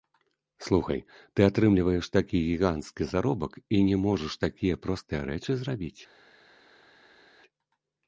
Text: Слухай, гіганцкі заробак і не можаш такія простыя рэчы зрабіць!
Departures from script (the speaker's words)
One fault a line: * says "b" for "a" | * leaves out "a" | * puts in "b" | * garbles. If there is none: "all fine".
* puts in "ты атрымліваеш такі"